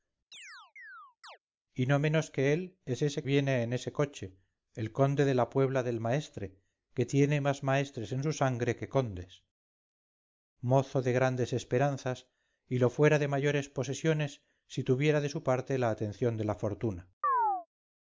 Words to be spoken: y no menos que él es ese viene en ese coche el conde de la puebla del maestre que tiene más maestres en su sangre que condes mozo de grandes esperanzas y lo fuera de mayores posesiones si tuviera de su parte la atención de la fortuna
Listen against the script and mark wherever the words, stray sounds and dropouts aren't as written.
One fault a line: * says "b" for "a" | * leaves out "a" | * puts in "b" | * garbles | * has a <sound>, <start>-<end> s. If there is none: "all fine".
* has a chirp, 0.3-1.4 s
* has a chirp, 17.2-17.7 s